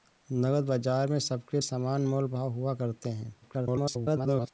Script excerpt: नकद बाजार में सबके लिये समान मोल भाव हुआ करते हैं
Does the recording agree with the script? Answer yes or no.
no